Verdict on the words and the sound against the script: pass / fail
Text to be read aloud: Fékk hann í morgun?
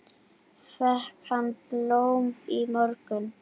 fail